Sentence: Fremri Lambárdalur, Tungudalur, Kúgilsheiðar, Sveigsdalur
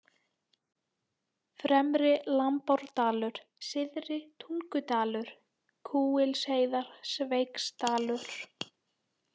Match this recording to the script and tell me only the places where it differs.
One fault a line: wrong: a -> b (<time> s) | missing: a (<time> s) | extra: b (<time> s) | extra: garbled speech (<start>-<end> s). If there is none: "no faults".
extra: Syðri (3.7 s)